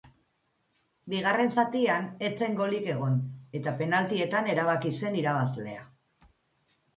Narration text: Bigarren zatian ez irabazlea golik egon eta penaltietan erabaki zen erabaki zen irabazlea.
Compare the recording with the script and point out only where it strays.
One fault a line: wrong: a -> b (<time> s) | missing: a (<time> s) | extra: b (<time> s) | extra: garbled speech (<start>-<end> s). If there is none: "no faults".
wrong: irabazlea -> zen (2.4 s)
missing: erabaki zen (5.2 s)